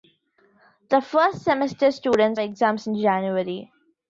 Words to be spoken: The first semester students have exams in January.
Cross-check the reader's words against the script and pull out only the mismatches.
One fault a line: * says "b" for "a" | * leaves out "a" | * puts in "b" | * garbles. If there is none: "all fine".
* leaves out "have"